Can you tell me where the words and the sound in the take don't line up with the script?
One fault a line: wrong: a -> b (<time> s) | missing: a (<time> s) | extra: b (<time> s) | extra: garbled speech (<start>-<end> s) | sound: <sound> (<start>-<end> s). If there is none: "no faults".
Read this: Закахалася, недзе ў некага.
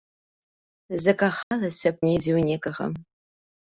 sound: dropout (1.4-1.5 s)